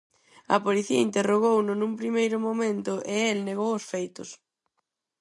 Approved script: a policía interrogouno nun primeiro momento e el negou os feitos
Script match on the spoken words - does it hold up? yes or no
yes